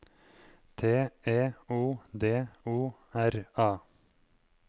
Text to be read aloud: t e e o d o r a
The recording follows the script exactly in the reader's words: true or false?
false